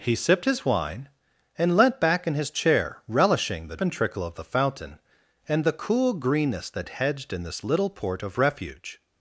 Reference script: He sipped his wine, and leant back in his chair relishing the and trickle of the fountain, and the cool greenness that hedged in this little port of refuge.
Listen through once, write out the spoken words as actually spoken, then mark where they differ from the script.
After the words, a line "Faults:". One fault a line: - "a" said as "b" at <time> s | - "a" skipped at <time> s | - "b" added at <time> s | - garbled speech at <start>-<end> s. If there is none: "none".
He sipped his wine, and leant back in his chair relishing the and trickle of the fountain, and the cool greenness that hedged in this little port of refuge.
Faults:
none